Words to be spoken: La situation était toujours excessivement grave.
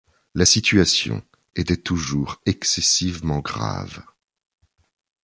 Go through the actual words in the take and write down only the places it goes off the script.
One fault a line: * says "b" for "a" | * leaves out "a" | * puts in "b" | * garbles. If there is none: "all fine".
all fine